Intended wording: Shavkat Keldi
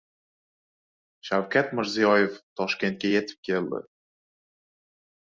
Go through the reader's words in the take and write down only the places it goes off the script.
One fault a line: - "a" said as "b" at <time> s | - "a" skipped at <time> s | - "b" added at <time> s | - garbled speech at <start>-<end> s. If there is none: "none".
- "Mirziyoyev Toshkentga yetib" added at 1.8 s